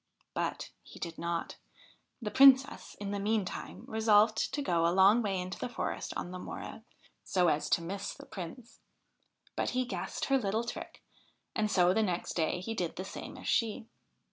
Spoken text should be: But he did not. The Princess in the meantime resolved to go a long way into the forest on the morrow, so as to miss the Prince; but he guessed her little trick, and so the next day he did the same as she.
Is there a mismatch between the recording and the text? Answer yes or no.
no